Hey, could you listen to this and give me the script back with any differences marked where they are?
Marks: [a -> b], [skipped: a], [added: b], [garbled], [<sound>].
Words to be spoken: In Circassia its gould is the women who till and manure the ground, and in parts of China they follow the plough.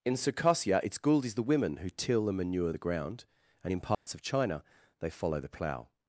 In Circassia its gould is the women who till and manure the ground, and in parts [dropout] of China they follow the plough.